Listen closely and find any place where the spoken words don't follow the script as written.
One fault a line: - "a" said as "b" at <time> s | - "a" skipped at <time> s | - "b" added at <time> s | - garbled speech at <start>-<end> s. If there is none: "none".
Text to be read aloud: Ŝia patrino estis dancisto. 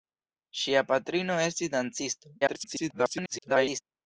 - garbled speech at 2.4-3.8 s